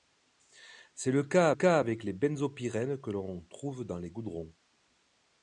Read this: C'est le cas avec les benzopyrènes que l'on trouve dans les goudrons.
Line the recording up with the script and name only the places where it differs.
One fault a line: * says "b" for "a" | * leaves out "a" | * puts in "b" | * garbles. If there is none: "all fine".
* puts in "cas"